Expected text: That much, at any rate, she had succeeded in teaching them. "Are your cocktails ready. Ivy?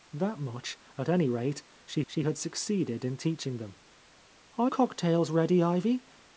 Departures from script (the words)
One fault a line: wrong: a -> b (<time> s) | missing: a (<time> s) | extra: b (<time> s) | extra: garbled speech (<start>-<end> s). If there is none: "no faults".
extra: she (2.1 s)
missing: your (4.7 s)